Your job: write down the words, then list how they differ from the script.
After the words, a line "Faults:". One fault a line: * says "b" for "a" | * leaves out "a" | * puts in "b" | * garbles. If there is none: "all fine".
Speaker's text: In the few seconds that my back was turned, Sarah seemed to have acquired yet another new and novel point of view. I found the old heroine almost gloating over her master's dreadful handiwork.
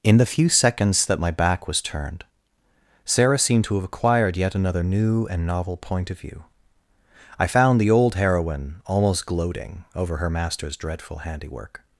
In the few seconds that my back was turned, Sarah seemed to have acquired yet another new and novel point of view. I found the old heroine almost gloating over her master's dreadful handiwork.
Faults:
all fine